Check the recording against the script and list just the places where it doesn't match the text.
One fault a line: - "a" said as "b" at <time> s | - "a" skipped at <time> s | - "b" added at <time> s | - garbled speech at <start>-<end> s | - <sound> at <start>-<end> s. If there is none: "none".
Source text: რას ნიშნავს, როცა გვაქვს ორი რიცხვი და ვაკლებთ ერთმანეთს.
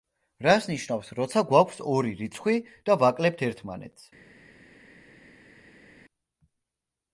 none